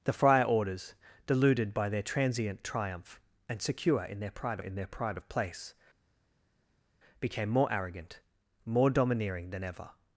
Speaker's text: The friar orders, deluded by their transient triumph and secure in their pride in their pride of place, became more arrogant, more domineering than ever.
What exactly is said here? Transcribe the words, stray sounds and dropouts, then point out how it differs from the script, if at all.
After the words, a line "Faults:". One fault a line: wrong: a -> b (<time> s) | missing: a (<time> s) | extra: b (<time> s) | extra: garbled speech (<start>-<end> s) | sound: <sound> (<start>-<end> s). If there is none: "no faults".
The friar orders, deluded by their transient triumph and secure in their pride in their pride of place, became more arrogant, more domineering than ever.
Faults:
no faults